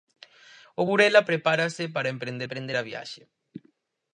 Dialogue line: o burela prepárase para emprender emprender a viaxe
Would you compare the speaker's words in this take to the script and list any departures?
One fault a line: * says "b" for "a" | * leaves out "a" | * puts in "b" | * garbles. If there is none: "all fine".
all fine